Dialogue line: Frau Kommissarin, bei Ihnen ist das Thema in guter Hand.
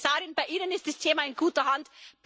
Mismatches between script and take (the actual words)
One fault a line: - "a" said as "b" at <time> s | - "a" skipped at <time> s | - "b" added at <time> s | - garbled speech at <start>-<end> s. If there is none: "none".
none